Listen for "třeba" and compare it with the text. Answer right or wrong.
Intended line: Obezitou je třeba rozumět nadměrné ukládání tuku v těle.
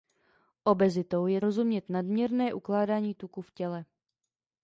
wrong